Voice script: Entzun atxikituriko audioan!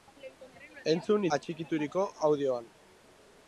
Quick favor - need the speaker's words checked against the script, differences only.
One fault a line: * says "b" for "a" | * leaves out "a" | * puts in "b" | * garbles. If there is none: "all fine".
all fine